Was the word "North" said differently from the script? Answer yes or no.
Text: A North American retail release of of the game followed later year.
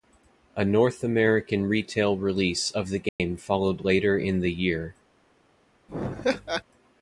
no